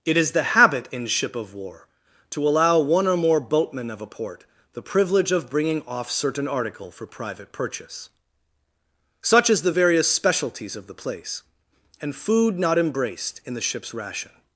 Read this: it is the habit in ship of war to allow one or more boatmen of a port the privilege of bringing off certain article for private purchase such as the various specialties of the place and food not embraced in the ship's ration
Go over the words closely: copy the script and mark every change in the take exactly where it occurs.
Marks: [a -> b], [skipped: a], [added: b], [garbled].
it is the habit in ship of war to allow one or more boatmen of a port the privilege of bringing off certain article for private purchase such as the various specialties of the place and food not embraced in the ship's ration